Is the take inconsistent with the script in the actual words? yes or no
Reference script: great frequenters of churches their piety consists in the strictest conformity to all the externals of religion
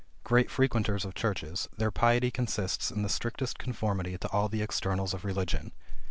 no